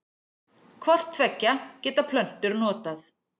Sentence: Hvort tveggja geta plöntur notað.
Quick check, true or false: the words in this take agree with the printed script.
true